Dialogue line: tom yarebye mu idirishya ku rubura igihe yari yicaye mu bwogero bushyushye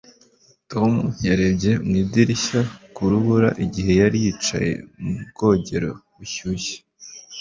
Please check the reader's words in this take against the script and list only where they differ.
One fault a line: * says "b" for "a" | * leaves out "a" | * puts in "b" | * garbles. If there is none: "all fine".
all fine